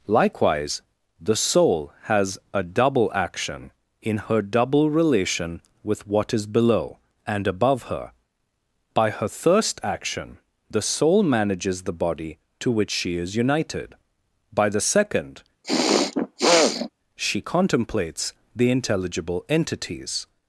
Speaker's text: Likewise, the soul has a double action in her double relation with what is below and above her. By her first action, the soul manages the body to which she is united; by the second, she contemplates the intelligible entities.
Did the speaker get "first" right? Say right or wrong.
wrong